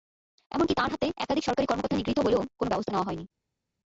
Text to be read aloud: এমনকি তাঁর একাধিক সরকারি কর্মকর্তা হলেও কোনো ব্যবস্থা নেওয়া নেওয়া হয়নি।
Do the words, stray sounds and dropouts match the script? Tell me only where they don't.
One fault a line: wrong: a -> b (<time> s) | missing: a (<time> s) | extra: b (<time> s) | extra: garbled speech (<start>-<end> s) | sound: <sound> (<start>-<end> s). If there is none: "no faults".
extra: হাতে (0.9 s)
extra: নিগৃহীত (1.9 s)
missing: নেওয়া (3.1 s)